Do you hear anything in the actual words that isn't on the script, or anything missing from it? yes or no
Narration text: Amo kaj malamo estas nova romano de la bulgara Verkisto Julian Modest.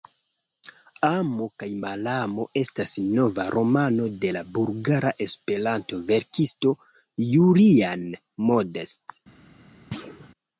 yes